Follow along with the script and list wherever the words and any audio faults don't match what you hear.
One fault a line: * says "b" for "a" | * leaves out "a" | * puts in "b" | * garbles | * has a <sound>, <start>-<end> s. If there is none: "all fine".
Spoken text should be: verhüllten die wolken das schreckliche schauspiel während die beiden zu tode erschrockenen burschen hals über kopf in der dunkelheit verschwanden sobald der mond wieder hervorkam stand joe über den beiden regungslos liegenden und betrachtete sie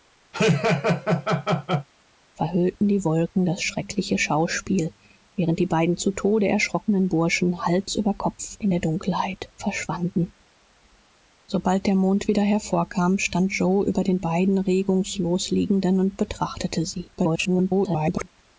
* has a laugh, 0.3-1.9 s
* garbles